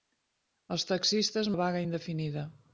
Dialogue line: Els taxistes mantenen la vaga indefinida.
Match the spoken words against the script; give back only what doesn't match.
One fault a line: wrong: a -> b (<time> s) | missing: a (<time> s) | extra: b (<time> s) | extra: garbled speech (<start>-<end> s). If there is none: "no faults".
missing: mantenen (1.5 s)